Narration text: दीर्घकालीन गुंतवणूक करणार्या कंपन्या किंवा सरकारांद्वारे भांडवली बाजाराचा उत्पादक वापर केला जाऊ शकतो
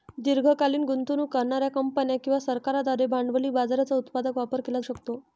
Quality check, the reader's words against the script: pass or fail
fail